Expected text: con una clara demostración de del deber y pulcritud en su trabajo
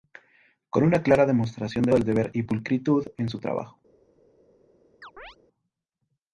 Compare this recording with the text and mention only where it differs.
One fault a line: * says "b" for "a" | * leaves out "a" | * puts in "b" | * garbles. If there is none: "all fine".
all fine